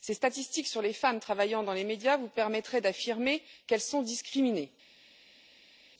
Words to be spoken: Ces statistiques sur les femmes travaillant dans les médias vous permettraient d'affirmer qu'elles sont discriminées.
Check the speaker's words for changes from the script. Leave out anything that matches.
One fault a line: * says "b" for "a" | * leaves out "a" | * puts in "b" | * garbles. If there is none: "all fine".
all fine